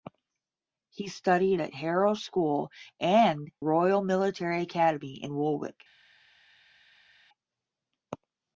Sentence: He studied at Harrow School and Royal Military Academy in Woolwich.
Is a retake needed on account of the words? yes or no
no